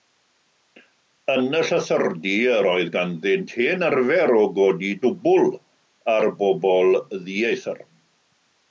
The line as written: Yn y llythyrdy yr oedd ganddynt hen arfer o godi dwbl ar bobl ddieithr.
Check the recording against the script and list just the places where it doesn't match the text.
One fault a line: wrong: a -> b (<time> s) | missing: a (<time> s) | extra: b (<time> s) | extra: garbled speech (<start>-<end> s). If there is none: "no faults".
no faults